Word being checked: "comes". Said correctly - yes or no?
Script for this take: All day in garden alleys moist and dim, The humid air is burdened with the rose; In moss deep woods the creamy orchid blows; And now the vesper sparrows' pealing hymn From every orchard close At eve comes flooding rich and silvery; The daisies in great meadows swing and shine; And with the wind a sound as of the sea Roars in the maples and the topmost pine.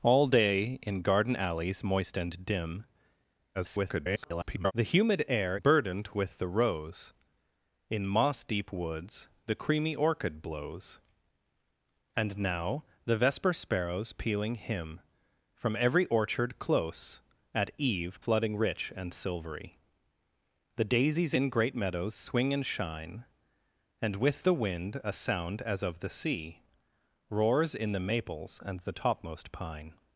no